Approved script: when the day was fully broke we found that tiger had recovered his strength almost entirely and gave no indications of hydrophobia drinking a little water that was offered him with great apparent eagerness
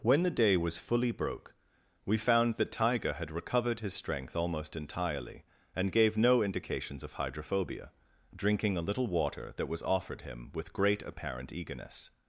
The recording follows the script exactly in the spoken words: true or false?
true